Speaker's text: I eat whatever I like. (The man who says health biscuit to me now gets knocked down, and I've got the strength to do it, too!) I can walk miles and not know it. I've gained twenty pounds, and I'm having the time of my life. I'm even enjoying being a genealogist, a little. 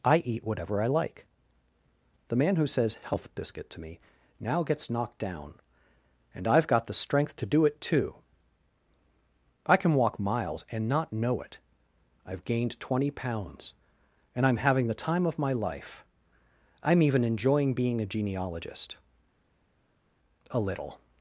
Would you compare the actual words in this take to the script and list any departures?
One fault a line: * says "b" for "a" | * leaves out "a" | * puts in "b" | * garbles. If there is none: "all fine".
all fine